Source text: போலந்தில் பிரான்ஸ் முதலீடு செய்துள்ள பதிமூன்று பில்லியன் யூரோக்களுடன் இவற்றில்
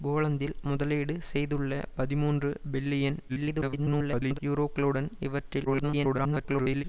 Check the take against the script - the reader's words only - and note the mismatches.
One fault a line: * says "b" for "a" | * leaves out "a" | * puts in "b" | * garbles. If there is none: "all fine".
* leaves out "பிரான்ஸ்"
* garbles
* garbles